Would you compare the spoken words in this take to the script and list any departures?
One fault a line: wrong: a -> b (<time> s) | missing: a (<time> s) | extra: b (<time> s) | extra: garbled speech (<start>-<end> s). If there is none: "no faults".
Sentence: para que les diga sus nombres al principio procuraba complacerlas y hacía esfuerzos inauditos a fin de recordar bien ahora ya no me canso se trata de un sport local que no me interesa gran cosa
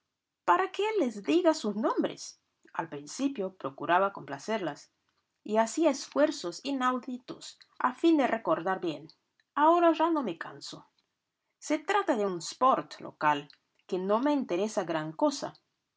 no faults